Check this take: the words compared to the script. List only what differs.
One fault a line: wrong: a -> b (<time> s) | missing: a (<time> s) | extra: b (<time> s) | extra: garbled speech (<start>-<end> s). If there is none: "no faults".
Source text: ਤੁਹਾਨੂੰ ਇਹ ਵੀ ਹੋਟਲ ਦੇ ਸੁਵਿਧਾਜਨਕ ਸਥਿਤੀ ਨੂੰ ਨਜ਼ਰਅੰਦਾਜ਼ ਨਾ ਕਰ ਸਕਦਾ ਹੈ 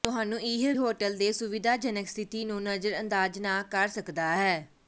missing: ਵੀ (0.7 s)